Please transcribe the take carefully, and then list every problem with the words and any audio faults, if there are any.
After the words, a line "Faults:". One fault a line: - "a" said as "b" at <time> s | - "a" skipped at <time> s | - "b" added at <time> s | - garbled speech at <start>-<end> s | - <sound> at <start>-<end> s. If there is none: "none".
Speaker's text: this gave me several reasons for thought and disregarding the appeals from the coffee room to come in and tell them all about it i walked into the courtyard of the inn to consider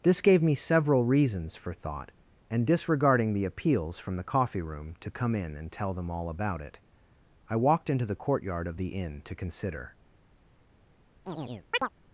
this gave me several reasons for thought and disregarding the appeals from the coffee room to come in and tell them all about it i walked into the courtyard of the inn to consider
Faults:
- chirp at 11.3-11.9 s